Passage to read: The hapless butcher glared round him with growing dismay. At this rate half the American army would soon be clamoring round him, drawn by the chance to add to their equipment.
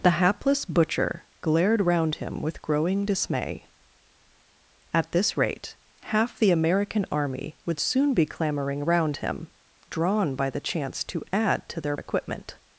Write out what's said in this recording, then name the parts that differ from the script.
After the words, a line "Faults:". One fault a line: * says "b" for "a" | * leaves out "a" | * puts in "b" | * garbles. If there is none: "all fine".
The hapless butcher glared round him with growing dismay. At this rate half the American army would soon be clamoring round him, drawn by the chance to add to their equipment.
Faults:
all fine